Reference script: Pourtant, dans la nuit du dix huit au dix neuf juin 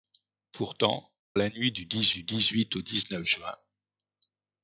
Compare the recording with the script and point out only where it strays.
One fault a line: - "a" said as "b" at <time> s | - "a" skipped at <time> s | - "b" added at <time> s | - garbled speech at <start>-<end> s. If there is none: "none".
- "dans" skipped at 1.1 s
- "du dix" added at 2.1 s